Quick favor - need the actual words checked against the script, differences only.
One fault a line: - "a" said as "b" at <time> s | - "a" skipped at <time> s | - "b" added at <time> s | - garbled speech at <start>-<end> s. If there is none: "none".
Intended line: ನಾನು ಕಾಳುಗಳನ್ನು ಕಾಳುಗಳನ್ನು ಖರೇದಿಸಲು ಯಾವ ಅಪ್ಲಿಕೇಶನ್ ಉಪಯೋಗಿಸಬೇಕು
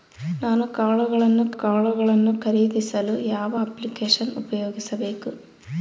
none